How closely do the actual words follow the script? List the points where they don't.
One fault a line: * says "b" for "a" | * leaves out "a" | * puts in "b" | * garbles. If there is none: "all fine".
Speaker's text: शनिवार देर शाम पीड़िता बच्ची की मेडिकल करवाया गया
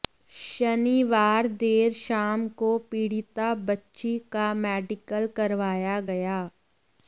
* puts in "को"
* says "का" for "की"